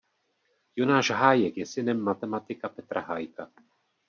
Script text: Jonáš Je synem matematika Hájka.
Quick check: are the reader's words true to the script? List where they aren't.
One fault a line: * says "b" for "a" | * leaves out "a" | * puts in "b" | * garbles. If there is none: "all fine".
* puts in "Hájek"
* puts in "Petra"